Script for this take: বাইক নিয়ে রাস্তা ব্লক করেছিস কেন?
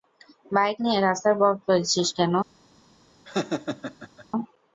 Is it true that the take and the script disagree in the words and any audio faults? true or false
true